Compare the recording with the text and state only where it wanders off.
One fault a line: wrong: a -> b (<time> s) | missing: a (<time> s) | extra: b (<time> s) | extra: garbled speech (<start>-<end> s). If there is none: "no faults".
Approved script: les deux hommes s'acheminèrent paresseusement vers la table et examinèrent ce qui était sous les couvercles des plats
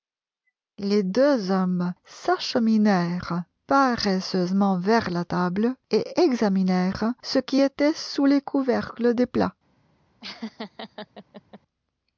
no faults